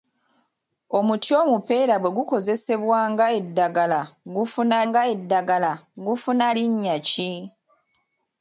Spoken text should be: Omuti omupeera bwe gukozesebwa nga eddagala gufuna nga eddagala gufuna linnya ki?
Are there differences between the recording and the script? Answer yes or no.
no